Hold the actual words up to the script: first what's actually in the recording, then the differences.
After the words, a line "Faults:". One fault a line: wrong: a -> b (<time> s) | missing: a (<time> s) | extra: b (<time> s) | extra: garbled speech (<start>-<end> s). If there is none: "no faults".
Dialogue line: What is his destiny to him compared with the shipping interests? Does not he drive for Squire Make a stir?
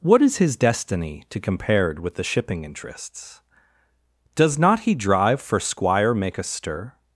What is his destiny to compared with the shipping interests? Does not he drive for Squire Make a stir?
Faults:
missing: him (1.4 s)